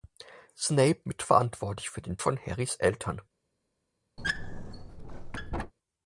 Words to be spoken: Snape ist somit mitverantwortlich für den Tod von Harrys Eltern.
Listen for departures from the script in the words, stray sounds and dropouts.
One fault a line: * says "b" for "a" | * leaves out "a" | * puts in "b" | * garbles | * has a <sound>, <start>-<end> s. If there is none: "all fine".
* leaves out "ist somit"
* leaves out "Tod"
* has a squeak, 4.2-5.7 s